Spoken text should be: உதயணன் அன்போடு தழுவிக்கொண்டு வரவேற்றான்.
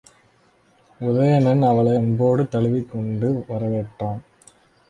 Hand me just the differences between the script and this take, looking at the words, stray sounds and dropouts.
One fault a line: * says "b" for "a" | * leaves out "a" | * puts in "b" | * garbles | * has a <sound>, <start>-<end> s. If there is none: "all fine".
* puts in "அவளை"